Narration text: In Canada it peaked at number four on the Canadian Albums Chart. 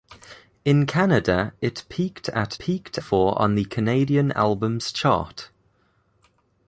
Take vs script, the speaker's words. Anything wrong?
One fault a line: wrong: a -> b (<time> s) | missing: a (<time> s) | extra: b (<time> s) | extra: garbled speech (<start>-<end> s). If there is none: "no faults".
wrong: number -> peaked (2.6 s)